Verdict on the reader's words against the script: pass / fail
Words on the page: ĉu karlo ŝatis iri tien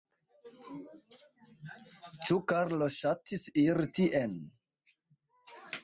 pass